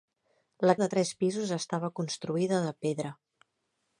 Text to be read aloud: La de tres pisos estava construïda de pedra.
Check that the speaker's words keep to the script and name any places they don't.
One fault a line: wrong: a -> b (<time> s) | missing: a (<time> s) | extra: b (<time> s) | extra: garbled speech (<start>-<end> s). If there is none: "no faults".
no faults